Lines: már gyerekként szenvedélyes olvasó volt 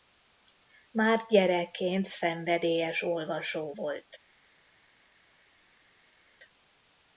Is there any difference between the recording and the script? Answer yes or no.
no